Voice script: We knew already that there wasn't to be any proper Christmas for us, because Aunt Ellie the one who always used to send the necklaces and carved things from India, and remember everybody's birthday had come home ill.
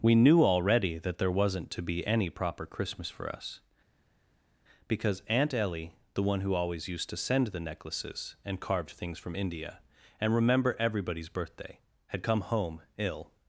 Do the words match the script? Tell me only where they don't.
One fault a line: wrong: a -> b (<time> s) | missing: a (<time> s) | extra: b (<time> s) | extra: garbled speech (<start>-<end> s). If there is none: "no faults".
no faults